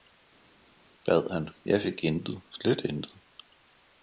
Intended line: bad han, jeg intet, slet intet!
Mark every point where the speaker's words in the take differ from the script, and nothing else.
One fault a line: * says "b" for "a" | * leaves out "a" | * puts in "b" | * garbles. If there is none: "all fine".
* puts in "fik"